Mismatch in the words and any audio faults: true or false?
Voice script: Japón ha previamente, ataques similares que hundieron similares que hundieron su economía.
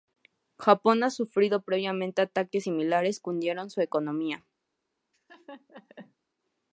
true